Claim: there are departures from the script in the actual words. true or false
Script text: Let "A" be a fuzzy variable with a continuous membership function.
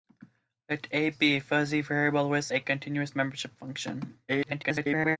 true